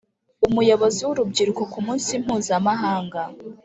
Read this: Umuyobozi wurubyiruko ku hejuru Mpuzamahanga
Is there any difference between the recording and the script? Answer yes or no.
yes